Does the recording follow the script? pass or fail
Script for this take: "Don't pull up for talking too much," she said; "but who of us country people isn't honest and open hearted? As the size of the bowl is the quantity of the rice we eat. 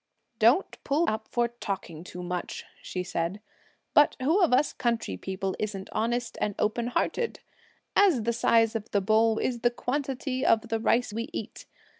pass